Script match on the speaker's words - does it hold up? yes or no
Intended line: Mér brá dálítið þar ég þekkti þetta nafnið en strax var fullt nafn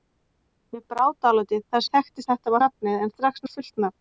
yes